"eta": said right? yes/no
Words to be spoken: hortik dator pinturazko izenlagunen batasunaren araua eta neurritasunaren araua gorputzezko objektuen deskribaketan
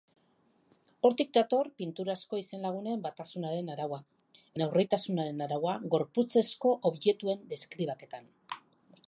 no